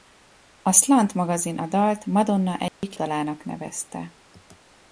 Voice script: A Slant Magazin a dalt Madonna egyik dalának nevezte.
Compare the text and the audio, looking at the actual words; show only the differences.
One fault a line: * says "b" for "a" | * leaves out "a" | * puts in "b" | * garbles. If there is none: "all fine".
all fine